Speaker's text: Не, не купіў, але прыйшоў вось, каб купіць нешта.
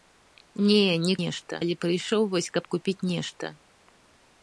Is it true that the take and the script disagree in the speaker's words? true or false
true